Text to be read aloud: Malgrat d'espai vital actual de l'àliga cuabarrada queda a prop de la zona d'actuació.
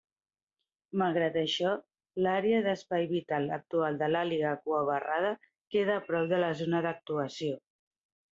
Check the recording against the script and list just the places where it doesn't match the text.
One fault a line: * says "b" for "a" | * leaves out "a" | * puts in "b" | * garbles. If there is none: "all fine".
* puts in "això l'àrea"